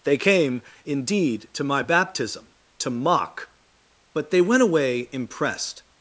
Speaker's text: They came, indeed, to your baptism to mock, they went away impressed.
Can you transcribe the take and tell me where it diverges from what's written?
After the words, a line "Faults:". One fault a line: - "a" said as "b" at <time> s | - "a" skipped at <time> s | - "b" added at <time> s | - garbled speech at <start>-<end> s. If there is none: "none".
They came, indeed, to my baptism to mock, but they went away impressed.
Faults:
- "your" said as "my" at 1.6 s
- "but" added at 4.1 s